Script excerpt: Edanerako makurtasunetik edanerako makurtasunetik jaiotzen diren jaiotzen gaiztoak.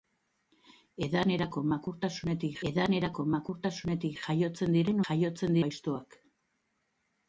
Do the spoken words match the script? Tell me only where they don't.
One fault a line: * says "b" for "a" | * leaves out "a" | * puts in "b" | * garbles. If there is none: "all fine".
all fine